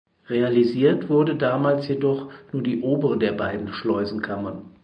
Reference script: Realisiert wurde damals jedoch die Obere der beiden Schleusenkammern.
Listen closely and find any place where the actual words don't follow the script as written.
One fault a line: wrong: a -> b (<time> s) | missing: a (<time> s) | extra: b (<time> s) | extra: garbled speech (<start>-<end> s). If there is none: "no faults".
extra: nur (2.5 s)